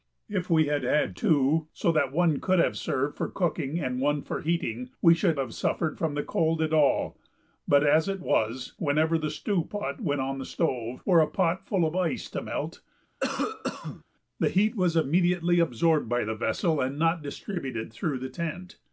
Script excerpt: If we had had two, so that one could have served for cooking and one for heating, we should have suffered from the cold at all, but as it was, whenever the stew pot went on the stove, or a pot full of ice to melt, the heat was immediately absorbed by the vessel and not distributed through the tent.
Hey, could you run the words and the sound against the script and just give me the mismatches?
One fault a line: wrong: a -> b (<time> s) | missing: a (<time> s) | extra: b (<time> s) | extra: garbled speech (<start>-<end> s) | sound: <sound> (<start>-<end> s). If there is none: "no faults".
sound: cough (13.2-14.0 s)